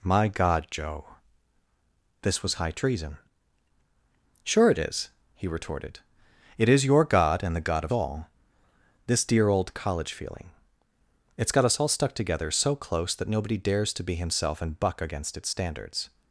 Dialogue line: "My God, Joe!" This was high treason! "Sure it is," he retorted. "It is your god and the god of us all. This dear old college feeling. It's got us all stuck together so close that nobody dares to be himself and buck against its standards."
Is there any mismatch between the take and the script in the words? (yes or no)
yes